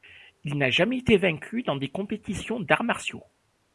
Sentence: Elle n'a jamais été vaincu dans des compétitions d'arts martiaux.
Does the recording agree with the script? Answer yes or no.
no